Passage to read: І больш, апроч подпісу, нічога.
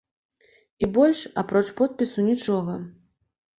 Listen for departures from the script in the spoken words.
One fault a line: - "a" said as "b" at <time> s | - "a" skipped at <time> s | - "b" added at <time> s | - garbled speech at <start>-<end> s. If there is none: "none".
none